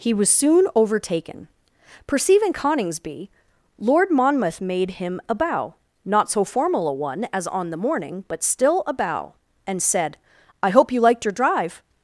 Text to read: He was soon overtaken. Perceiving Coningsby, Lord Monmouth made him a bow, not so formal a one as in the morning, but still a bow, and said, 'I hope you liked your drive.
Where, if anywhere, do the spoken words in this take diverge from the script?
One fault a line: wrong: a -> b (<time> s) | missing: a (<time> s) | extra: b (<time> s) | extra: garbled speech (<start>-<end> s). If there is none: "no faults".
wrong: in -> on (7.5 s)